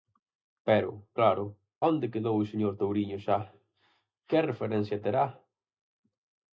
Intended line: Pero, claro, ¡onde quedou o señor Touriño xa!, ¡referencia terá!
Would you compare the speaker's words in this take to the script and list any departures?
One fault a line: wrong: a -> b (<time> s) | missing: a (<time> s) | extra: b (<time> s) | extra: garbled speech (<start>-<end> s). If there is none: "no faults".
extra: que (4.3 s)